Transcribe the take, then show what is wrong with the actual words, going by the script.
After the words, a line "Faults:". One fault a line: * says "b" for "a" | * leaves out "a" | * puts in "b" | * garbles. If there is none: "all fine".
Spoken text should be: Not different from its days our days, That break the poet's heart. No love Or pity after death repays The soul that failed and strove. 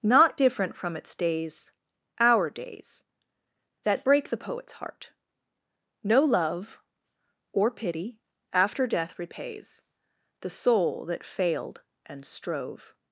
Not different from its days our days, That break the poet's heart. No love Or pity after death repays The soul that failed and strove.
Faults:
all fine